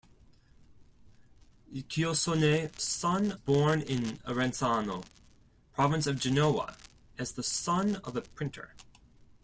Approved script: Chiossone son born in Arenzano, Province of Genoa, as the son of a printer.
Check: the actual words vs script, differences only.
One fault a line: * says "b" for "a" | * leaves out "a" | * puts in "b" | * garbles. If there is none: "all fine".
all fine